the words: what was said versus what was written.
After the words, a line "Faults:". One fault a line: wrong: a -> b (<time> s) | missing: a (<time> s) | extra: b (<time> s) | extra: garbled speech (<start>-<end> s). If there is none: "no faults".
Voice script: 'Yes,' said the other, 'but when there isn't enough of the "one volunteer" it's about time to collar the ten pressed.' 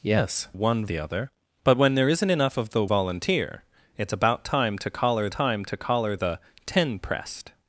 'Yes,' one the other, 'but when there isn't enough of the "volunteer" it's about time to collar time to collar the ten pressed.'
Faults:
wrong: said -> one (0.5 s)
missing: one (2.8 s)
extra: time to collar (5.3 s)